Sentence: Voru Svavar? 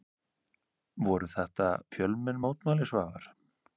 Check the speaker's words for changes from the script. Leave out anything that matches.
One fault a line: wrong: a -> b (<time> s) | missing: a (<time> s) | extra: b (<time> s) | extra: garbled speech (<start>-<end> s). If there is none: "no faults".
extra: þetta fjölmenn mótmæli (1.3 s)